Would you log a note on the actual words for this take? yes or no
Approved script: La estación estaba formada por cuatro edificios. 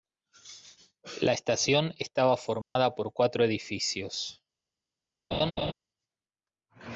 no